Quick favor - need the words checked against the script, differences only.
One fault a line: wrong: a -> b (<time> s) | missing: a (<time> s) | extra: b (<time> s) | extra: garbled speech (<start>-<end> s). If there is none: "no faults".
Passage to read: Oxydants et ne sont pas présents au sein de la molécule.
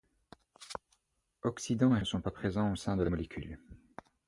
no faults